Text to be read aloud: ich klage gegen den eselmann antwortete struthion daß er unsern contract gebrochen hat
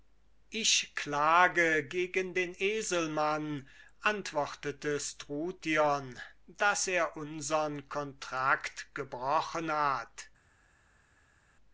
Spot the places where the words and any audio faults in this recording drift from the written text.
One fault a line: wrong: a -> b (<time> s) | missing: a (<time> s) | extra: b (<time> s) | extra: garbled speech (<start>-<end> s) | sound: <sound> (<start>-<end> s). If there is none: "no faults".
no faults